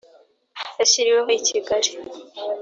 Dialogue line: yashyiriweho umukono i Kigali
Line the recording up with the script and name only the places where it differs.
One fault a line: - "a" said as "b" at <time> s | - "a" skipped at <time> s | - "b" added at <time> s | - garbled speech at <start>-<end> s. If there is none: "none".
- "umukono" skipped at 1.3 s